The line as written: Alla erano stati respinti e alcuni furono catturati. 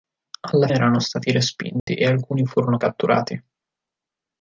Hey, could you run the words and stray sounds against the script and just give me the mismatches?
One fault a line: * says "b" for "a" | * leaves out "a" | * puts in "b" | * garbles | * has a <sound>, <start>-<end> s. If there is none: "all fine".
* has a dropout, 1.8-1.9 s